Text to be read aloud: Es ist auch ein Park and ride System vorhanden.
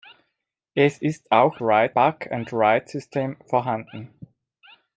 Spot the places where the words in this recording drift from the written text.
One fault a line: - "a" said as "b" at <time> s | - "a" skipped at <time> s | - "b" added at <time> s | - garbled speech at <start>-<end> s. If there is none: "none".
- "ein" said as "ride" at 1.6 s